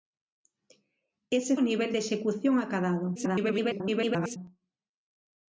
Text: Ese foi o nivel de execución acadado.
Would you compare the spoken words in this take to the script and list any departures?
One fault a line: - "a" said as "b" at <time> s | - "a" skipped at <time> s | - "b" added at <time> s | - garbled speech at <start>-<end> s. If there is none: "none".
- "foi" skipped at 1.6 s
- garbled speech at 3.1-4.4 s